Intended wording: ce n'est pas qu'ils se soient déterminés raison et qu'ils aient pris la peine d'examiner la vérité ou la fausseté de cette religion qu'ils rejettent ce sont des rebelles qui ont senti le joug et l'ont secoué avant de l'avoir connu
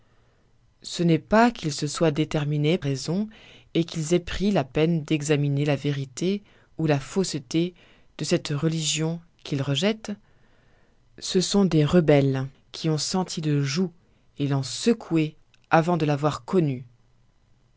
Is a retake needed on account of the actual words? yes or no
no